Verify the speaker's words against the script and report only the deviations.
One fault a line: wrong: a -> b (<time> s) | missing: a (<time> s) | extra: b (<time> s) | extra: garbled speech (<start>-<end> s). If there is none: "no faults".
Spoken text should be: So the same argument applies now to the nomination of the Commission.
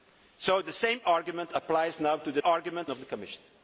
wrong: nomination -> argument (2.4 s)